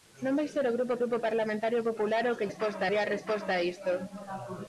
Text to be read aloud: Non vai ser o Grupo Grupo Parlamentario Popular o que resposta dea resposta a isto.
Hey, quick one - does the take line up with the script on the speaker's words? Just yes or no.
yes